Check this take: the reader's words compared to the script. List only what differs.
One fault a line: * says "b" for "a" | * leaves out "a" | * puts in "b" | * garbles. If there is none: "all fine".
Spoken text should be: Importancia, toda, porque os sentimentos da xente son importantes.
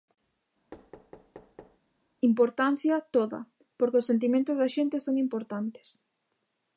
all fine